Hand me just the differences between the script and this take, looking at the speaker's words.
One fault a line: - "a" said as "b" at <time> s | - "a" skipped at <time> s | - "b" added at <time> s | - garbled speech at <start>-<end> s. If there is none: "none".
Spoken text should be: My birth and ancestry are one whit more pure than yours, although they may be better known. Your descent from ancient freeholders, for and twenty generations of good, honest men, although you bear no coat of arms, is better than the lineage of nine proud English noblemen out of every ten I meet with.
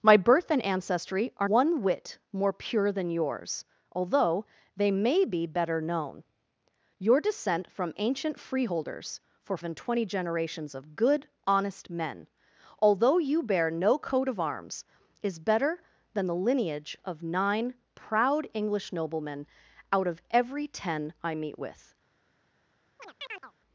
none